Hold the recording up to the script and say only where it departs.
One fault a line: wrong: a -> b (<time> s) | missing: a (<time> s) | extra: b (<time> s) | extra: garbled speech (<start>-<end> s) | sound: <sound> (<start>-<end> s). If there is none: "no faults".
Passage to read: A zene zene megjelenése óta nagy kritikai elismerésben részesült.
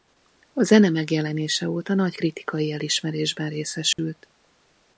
missing: zene (0.9 s)
sound: dropout (3.9-4.0 s)